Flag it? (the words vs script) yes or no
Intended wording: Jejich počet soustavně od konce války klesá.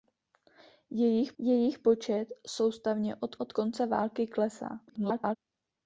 yes